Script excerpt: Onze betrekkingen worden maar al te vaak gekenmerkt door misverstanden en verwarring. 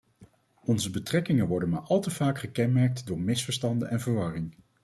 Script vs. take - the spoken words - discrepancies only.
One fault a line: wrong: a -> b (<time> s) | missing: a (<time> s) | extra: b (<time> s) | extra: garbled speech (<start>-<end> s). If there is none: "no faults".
no faults